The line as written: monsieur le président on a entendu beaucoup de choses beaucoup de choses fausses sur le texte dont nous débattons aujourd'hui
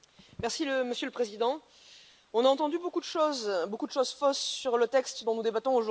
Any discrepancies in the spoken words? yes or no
no